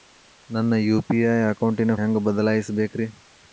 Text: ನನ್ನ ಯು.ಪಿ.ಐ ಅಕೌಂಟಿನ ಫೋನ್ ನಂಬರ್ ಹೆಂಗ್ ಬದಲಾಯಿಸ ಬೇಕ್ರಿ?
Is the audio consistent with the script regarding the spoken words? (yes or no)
no